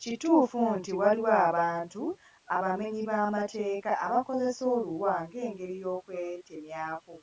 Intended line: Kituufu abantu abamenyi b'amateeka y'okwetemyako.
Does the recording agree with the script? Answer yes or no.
no